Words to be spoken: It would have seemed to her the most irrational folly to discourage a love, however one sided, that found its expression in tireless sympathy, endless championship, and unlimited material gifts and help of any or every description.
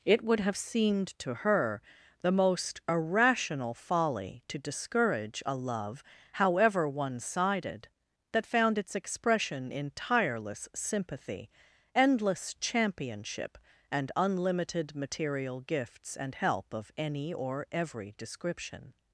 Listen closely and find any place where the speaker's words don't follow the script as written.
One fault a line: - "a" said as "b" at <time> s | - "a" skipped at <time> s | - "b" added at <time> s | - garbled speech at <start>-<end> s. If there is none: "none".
none